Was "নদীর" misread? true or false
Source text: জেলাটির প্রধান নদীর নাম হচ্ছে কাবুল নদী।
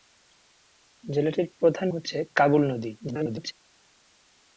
true